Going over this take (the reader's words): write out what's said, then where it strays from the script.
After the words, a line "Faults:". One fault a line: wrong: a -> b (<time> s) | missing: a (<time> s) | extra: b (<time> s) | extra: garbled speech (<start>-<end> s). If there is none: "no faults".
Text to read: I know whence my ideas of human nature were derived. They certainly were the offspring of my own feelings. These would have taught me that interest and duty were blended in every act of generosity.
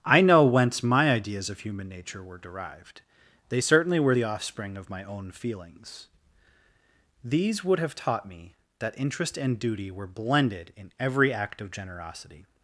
I know whence my ideas of human nature were derived. They certainly were the offspring of my own feelings. These would have taught me that interest and duty were blended in every act of generosity.
Faults:
no faults